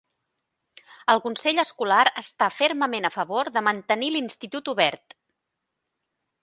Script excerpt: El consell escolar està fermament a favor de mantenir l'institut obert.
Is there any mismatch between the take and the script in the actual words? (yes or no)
no